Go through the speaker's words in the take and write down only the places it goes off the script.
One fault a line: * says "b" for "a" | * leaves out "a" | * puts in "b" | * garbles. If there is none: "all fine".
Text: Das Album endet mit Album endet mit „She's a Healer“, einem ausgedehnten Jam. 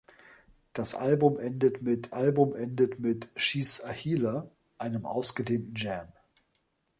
all fine